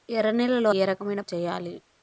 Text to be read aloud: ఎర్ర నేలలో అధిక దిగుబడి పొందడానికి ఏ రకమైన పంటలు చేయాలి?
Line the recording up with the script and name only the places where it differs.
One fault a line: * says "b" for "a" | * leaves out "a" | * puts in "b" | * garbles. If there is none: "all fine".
* leaves out "అధిక దిగుబడి పొందడానికి"
* leaves out "పంటలు"